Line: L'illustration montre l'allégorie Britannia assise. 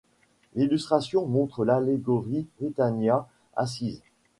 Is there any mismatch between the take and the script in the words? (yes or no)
no